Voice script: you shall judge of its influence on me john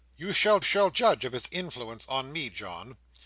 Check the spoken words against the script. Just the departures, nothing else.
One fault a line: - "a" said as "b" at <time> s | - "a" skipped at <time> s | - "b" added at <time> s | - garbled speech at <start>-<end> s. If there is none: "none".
- "shall" added at 0.6 s